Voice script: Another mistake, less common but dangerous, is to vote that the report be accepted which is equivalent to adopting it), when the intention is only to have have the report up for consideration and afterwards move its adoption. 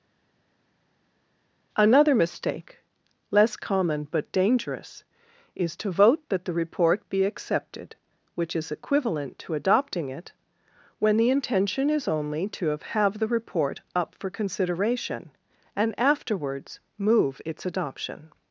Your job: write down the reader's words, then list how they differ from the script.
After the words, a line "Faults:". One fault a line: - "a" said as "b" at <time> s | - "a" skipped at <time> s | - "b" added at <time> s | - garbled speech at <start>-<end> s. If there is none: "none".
Another mistake, less common but dangerous, is to vote that the report be accepted which is equivalent to adopting it), when the intention is only to have have the report up for consideration and afterwards move its adoption.
Faults:
none